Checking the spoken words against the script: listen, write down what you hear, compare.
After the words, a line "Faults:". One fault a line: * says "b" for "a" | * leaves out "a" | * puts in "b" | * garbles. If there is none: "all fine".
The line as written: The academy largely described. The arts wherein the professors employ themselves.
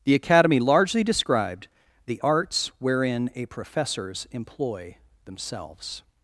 The academy largely described. The arts wherein a professors employ themselves.
Faults:
* says "a" for "the"